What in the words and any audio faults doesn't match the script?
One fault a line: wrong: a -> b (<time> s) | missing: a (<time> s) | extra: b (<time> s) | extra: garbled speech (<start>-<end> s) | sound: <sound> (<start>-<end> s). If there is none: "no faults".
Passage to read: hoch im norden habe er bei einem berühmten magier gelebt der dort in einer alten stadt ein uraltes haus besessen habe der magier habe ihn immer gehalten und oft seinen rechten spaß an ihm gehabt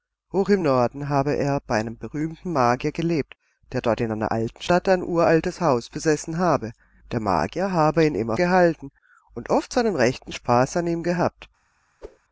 sound: whoosh (12.0-12.2 s)